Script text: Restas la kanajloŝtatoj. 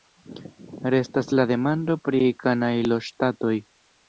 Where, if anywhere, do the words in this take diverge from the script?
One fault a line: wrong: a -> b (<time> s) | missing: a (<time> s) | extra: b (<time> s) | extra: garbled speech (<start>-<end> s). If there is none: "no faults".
extra: demando pri (1.5 s)